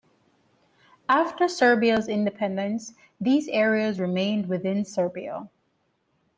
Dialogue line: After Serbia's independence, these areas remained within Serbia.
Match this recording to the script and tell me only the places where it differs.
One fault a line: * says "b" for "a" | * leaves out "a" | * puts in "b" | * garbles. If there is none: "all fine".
all fine